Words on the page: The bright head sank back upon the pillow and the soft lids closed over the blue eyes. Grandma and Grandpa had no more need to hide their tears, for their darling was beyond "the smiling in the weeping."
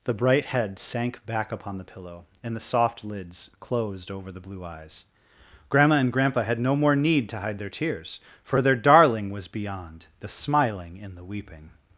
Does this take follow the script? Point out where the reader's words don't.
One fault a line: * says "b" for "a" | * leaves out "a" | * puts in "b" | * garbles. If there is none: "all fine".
all fine